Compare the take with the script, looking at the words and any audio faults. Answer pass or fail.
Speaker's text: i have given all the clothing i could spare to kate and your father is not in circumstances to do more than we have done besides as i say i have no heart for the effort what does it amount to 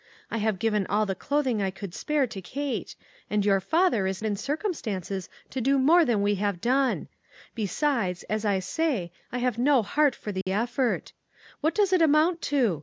fail